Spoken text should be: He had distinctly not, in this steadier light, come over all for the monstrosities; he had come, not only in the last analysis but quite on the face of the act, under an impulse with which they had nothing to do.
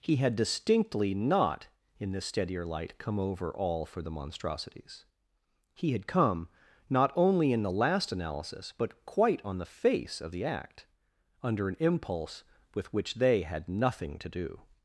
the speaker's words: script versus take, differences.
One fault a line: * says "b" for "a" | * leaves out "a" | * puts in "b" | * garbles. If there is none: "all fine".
all fine